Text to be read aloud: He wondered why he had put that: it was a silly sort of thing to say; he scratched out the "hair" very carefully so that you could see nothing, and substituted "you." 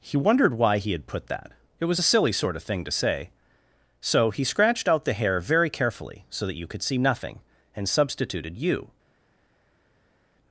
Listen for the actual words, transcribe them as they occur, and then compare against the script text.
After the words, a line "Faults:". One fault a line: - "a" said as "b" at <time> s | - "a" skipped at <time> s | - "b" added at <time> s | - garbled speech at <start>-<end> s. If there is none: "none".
He wondered why he had put that: it was a silly sort of thing to say; so he scratched out the "hair" very carefully so that you could see nothing, and substituted "you."
Faults:
- "so" added at 4.0 s